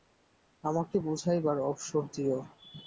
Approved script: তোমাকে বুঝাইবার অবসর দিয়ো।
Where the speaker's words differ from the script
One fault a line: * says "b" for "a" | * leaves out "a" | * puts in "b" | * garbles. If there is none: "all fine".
* says "আমাকে" for "তোমাকে"